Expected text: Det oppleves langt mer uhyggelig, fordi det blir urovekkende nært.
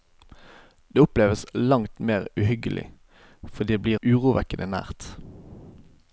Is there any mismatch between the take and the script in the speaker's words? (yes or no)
no